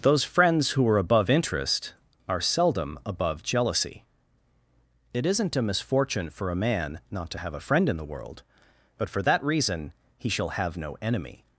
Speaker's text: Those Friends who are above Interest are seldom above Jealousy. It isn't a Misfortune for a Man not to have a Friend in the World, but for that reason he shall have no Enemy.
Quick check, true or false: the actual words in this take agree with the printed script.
true